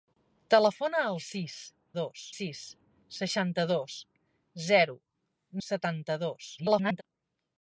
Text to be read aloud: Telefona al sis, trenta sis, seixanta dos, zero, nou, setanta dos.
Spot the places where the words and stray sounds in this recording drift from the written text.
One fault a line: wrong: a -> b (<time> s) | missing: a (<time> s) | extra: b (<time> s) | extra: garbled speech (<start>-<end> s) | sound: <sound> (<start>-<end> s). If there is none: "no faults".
wrong: trenta -> dos (2.0 s)
missing: nou (5.0 s)
extra: garbled speech (6.6-7.0 s)